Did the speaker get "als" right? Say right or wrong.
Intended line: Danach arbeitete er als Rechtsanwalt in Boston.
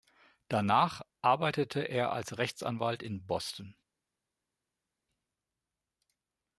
right